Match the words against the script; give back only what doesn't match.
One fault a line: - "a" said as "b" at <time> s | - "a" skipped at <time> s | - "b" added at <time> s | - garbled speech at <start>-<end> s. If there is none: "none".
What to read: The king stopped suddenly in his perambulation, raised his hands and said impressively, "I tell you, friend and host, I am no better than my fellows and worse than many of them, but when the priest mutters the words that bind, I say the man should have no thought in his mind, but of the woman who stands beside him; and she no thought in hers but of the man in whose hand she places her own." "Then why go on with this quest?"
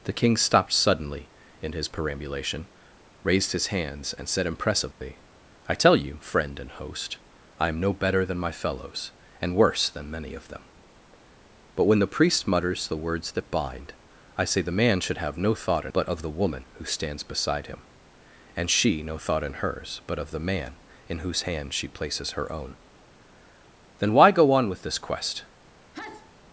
- "his mind" skipped at 15.9 s